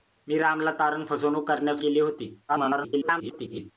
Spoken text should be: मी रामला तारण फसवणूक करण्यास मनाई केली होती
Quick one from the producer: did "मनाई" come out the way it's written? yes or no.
no